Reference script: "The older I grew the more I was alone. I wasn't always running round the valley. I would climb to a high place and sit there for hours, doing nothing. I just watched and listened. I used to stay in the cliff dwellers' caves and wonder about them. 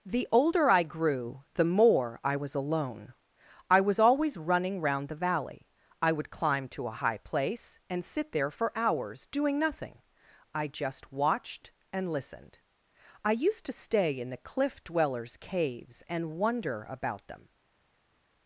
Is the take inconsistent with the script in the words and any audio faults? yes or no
yes